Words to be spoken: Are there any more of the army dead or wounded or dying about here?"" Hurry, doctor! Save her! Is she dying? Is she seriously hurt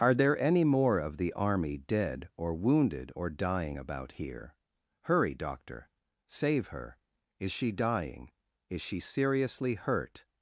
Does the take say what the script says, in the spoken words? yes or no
yes